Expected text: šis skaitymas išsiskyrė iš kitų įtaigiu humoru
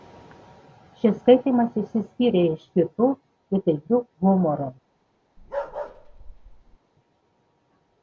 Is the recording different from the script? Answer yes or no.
no